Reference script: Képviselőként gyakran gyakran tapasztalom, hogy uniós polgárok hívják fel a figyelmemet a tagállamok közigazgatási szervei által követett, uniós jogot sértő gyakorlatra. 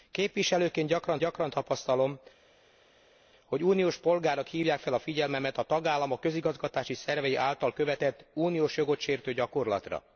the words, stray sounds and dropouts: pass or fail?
pass